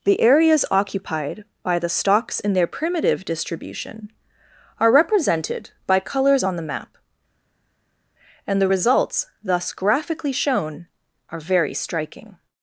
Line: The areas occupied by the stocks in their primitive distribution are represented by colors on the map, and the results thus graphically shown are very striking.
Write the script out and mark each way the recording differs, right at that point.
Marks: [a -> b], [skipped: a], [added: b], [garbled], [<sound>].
The areas occupied by the stocks in their primitive distribution are represented by colors on the map, and the results thus graphically shown are very striking.